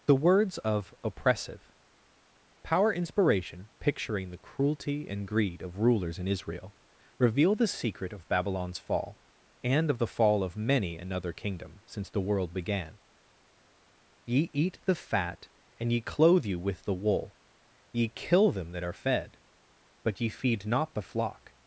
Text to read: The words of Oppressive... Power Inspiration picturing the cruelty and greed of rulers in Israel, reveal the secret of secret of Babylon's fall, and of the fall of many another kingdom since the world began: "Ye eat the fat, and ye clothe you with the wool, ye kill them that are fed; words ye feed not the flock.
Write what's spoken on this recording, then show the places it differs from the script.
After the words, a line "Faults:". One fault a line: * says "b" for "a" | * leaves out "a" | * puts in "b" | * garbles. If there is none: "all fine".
The words of Oppressive... Power Inspiration picturing the cruelty and greed of rulers in Israel, reveal the secret of Babylon's fall, and of the fall of many another kingdom since the world began: "Ye eat the fat, and ye clothe you with the wool, ye kill them that are fed; but ye feed not the flock.
Faults:
* leaves out "secret of"
* says "but" for "words"